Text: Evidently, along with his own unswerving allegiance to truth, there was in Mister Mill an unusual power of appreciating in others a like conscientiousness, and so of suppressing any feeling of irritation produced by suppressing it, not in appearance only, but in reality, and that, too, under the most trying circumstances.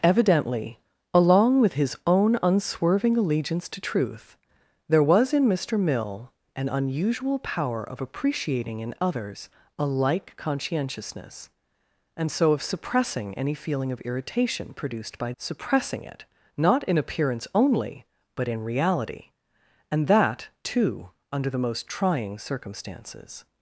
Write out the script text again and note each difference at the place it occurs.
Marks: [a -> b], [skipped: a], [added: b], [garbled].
Evidently, along with his own unswerving allegiance to truth, there was in Mister Mill an unusual power of appreciating in others a like conscientiousness, and so of suppressing any feeling of irritation produced by suppressing it, not in appearance only, but in reality, and that, too, under the most trying circumstances.